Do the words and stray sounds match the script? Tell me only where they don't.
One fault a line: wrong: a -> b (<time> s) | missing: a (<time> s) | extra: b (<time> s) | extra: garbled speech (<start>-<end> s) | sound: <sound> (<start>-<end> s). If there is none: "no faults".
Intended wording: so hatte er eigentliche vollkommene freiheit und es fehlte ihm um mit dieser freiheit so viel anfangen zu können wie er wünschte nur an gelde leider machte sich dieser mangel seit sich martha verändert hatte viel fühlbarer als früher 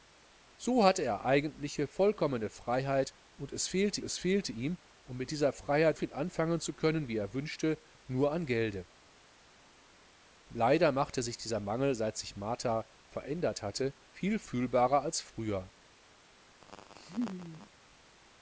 extra: es fehlte (4.0 s)
missing: so (6.0 s)
sound: laugh (16.6-17.7 s)